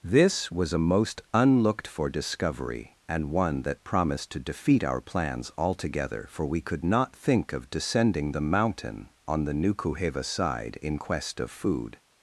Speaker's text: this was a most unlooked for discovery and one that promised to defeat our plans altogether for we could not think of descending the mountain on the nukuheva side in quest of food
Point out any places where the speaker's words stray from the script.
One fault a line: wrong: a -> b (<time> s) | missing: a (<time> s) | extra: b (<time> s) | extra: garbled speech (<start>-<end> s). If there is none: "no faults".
no faults